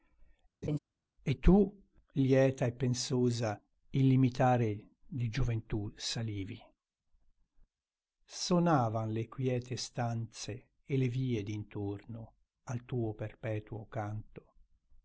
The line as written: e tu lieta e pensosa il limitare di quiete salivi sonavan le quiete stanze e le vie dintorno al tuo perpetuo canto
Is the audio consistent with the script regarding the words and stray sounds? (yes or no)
no